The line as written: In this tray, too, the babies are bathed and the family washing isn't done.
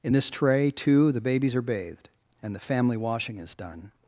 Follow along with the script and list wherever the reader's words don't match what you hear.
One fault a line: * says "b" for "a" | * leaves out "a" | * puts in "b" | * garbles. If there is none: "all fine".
* says "is" for "isn't"